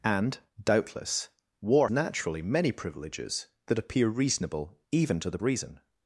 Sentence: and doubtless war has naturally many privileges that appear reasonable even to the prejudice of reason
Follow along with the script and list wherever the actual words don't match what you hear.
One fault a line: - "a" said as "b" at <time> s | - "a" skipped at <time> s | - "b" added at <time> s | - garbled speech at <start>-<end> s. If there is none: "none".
- "has" skipped at 1.9 s
- "prejudice of" skipped at 5.4 s